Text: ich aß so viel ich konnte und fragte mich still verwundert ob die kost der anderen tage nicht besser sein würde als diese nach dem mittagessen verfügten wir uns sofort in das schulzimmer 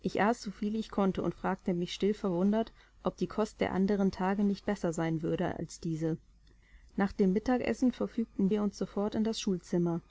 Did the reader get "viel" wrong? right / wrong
right